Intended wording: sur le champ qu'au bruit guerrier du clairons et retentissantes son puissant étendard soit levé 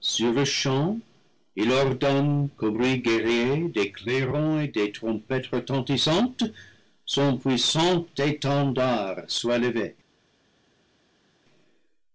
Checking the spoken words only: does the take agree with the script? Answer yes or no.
no